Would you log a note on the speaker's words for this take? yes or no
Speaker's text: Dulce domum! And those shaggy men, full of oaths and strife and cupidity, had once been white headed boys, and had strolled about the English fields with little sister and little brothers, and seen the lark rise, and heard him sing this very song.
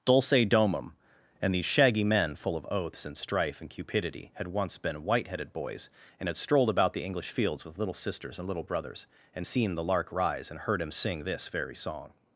yes